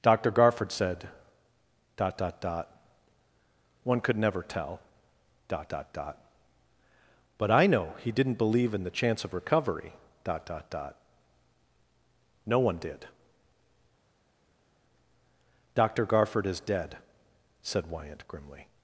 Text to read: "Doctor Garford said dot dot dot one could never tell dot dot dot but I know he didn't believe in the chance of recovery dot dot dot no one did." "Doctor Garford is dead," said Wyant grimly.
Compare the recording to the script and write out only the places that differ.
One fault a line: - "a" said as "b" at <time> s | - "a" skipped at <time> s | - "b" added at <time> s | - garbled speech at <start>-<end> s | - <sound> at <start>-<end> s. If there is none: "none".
none